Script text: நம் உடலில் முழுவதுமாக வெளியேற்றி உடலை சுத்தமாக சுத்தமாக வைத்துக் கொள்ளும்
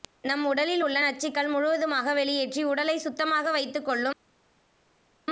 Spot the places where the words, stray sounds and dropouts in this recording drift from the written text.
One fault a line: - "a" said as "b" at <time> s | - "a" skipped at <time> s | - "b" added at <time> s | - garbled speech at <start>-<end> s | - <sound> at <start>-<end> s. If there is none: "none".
- "உள்ள நச்சுக்கள்" added at 0.8 s
- "சுத்தமாக" skipped at 3.5 s